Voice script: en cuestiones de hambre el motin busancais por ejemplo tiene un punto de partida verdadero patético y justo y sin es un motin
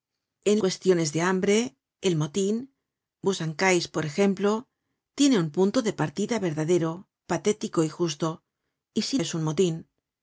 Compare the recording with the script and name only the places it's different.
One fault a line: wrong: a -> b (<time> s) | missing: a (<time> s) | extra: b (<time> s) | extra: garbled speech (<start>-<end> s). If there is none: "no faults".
no faults